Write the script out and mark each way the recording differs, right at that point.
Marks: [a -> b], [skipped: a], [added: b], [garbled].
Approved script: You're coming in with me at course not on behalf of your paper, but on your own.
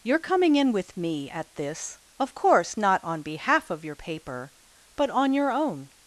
You're coming in with me at [added: this of] course not on behalf of your paper, but on your own.